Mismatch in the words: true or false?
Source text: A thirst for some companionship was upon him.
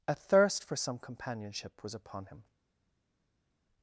false